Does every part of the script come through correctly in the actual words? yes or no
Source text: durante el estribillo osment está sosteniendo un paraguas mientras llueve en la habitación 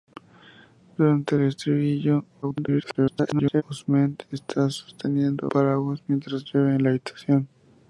no